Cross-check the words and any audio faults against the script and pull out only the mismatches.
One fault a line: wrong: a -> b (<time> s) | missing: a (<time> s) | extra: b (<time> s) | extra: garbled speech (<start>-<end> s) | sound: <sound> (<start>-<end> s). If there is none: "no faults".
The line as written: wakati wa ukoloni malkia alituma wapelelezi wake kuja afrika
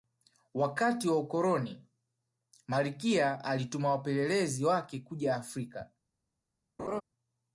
sound: laugh (6.8-7.0 s)